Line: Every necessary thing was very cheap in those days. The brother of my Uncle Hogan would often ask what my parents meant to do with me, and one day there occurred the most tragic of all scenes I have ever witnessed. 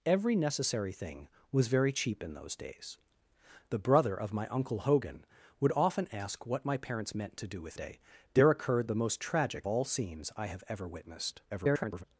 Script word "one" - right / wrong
wrong